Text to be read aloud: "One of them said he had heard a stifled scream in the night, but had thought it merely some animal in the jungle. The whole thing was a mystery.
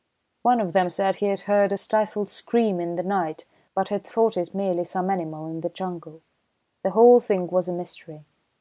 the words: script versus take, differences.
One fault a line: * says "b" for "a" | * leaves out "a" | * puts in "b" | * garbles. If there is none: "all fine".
all fine